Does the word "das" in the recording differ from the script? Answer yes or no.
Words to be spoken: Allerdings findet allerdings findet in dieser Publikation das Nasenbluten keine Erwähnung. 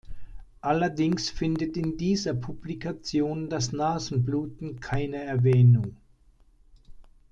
no